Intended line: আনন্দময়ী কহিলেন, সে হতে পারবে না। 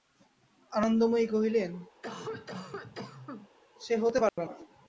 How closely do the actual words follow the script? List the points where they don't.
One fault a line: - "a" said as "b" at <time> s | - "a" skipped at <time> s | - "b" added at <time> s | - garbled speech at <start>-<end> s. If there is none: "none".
none